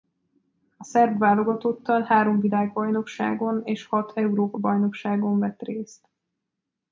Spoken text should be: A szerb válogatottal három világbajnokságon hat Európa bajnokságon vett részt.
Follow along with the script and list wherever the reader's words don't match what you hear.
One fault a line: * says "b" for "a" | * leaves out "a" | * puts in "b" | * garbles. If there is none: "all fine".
* puts in "és"